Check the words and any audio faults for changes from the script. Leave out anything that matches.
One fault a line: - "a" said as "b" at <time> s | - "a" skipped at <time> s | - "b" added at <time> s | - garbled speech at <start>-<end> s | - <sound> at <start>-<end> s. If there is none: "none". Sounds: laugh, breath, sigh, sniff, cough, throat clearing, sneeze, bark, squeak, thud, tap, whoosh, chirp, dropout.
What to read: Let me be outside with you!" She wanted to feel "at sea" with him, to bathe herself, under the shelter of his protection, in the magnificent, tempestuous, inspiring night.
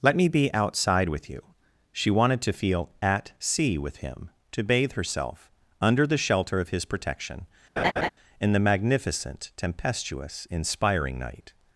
- laugh at 7.8-8.1 s